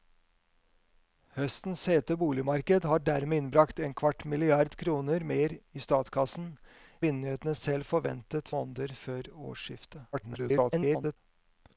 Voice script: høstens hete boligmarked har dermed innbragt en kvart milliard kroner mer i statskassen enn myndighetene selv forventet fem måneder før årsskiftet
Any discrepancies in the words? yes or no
yes